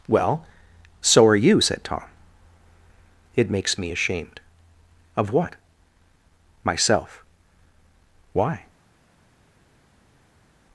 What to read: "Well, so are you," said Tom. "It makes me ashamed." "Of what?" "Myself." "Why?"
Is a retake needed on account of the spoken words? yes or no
no